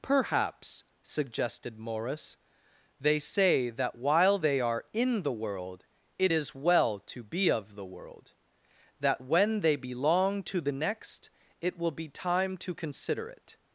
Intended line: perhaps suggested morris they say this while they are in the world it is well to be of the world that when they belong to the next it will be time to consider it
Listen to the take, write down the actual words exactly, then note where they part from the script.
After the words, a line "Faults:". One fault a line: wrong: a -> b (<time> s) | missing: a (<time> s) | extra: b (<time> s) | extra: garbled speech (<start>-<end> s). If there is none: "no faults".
perhaps suggested morris they say that while they are in the world it is well to be of the world that when they belong to the next it will be time to consider it
Faults:
wrong: this -> that (3.7 s)